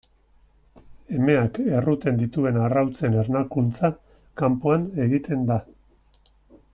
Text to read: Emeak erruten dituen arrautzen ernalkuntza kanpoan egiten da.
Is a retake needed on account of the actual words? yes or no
no